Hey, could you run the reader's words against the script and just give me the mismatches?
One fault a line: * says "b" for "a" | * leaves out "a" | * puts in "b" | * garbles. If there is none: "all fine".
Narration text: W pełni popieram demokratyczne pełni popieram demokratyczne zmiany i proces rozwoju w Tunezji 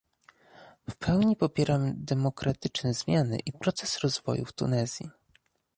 * leaves out "pełni popieram demokratyczne"